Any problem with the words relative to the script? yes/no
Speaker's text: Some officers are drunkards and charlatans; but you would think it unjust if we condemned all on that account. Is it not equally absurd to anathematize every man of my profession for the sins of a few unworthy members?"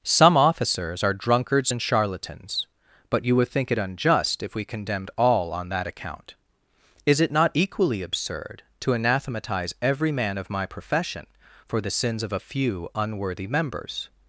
no